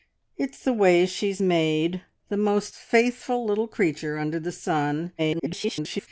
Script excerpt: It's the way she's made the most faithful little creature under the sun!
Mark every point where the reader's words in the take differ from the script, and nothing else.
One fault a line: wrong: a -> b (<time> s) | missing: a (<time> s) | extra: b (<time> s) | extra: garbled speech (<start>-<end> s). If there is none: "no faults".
extra: garbled speech (5.2-6.1 s)